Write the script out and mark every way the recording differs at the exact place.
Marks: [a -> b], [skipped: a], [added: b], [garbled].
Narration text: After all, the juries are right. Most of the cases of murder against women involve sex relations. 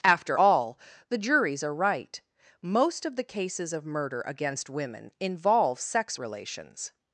After all, the juries are right. Most of the cases of murder against women involve sex relations.